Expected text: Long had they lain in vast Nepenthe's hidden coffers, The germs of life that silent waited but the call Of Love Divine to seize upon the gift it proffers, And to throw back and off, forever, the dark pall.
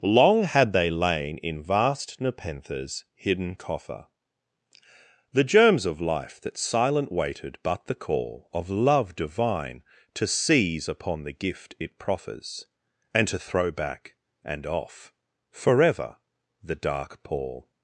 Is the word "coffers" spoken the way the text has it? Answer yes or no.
no